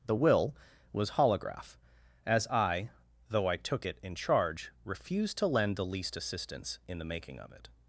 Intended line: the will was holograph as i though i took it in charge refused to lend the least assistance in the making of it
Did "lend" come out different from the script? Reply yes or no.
no